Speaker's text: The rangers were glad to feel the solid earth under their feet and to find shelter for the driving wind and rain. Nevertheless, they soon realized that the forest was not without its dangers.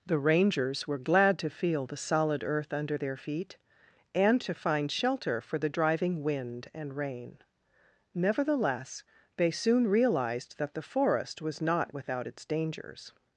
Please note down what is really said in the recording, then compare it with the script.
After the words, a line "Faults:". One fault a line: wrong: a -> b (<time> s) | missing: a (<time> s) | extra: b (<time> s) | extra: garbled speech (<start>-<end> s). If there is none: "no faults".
The rangers were glad to feel the solid earth under their feet and to find shelter for the driving wind and rain. Nevertheless, they soon realized that the forest was not without its dangers.
Faults:
no faults